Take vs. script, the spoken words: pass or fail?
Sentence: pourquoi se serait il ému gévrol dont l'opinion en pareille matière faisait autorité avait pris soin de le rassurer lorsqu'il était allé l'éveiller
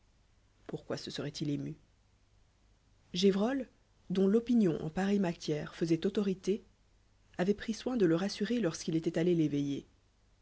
pass